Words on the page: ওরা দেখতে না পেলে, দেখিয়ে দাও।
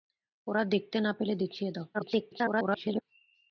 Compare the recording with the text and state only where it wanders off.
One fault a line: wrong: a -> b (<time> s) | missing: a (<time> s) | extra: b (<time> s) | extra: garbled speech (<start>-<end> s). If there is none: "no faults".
extra: garbled speech (1.9-3.0 s)